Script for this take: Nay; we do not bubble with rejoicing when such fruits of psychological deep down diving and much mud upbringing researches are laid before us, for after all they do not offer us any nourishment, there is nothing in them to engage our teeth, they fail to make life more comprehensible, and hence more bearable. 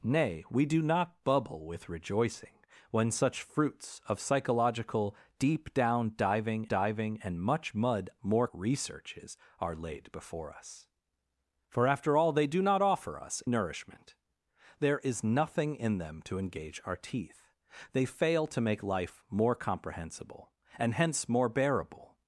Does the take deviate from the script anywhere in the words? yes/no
yes